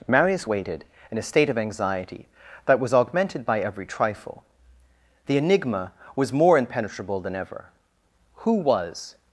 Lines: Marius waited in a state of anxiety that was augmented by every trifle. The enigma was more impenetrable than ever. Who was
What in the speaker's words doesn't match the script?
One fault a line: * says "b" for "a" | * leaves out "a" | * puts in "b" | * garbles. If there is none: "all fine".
all fine